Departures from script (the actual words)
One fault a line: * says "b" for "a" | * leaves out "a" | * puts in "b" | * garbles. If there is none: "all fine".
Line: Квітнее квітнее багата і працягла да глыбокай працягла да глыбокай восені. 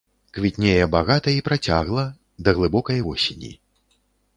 * leaves out "квітнее"
* leaves out "працягла да глыбокай"